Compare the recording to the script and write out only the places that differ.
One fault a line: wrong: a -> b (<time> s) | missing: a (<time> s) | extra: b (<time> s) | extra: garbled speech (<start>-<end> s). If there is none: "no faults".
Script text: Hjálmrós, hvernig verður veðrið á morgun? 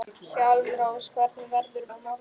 missing: veðrið (1.9 s)